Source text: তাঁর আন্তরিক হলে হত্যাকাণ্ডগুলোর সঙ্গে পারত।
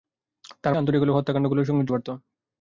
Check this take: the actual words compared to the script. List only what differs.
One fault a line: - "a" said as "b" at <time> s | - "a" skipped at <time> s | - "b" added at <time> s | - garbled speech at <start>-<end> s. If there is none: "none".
none